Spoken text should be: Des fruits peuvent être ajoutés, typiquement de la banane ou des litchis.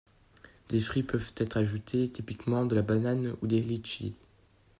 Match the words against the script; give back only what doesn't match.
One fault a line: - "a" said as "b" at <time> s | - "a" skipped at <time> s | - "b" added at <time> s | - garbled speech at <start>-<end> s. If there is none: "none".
none